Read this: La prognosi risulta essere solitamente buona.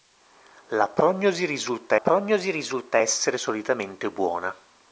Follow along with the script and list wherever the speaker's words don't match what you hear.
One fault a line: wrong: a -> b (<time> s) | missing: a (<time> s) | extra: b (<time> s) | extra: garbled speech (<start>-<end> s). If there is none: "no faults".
extra: prognosi risulta (2.0 s)